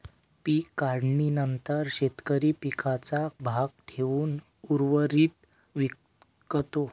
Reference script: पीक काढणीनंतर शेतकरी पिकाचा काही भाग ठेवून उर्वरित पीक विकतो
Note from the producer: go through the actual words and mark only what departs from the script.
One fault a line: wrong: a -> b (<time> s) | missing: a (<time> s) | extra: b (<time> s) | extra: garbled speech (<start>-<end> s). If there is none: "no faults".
missing: काही (3.3 s)
missing: पीक (5.5 s)